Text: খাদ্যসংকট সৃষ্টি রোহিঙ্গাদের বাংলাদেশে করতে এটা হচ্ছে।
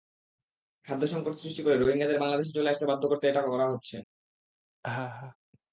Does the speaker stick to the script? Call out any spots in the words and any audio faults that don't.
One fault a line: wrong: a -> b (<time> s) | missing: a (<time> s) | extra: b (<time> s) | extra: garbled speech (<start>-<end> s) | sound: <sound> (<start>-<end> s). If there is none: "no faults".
extra: করে (1.6 s)
extra: চলে আসতে বাধ্য (2.5 s)
extra: করা (3.5 s)
sound: laugh (4.8-5.4 s)